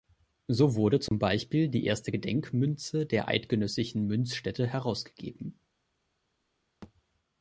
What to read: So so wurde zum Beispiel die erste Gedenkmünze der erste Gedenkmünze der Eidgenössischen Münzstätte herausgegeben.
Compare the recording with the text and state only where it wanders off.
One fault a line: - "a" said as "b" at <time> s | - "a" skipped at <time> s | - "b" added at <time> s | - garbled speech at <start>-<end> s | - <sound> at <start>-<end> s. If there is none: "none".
- "so" skipped at 0.7 s
- dropout at 1.1-1.1 s
- "erste Gedenkmünze der" skipped at 3.3 s
- thud at 6.8-6.9 s